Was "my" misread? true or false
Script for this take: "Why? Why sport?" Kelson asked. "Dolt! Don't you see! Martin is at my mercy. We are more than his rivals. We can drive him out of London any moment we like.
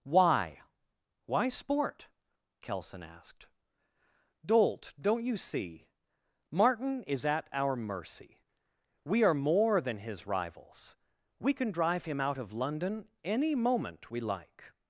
true